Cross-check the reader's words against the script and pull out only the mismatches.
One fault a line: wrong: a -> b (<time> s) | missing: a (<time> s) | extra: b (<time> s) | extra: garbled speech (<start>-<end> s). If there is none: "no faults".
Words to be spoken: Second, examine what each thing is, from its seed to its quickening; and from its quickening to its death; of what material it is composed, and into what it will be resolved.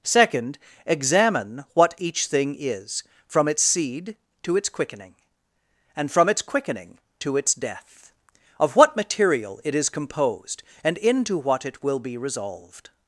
no faults